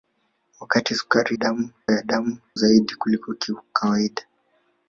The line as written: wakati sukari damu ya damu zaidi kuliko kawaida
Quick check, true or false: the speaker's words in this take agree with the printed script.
true